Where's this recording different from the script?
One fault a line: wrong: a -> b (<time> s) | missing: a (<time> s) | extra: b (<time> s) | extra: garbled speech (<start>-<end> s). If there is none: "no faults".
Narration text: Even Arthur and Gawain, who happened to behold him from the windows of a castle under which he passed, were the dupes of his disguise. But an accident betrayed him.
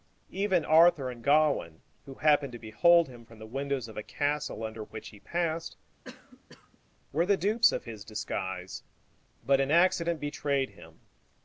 no faults